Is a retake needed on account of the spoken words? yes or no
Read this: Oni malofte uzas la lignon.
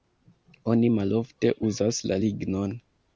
no